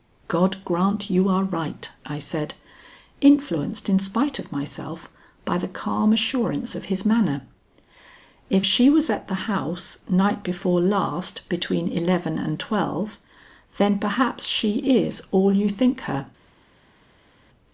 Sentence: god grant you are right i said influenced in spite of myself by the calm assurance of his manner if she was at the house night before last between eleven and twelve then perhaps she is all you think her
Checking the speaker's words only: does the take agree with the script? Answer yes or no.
yes